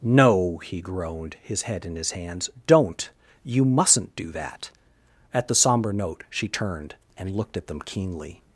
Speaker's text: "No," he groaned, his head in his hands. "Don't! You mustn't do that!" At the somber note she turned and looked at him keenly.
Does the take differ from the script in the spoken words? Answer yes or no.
yes